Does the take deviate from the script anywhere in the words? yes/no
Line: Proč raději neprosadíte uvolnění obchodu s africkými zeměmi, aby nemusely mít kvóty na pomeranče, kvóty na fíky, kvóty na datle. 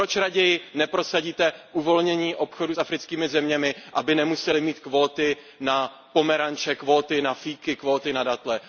no